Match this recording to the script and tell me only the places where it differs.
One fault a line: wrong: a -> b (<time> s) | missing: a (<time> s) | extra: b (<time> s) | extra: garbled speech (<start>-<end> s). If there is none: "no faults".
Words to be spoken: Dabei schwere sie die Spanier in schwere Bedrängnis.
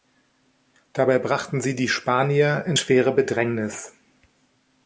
wrong: schwere -> brachten (1.2 s)